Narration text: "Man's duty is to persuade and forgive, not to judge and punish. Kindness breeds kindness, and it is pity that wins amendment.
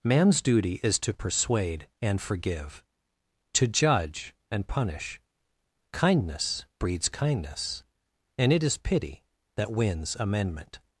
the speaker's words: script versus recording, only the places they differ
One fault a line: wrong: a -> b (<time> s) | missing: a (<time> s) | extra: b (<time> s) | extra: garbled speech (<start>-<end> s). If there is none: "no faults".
missing: not (2.8 s)